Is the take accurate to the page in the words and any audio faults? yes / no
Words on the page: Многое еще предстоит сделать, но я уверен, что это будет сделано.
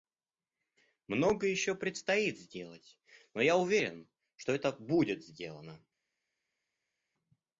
yes